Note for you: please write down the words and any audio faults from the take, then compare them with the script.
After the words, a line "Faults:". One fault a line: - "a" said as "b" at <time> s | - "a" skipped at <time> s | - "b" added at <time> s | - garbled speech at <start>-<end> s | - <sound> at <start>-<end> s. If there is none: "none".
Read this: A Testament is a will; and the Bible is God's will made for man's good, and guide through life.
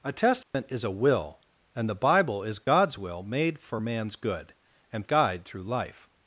A Testament is a will; and the Bible is God's will made for man's good, and guide through life.
Faults:
- dropout at 0.4-0.5 s
- dropout at 2.6-2.7 s